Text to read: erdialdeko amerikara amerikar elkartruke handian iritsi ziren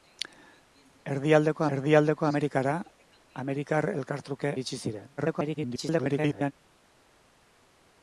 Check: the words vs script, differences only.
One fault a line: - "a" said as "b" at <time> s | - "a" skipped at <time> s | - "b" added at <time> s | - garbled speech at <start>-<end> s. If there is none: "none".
- "erdialdeko" added at 1.8 s
- "handian" skipped at 4.5 s
- garbled speech at 5.2-6.5 s